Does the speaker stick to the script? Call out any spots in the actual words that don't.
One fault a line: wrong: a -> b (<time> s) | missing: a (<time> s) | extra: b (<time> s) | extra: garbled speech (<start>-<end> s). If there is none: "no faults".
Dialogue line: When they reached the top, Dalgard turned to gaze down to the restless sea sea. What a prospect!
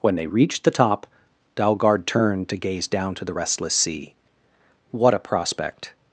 missing: sea (4.1 s)